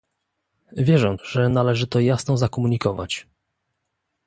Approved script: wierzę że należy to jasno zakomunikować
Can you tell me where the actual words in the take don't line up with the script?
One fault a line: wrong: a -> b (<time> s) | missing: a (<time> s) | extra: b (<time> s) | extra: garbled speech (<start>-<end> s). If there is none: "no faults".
no faults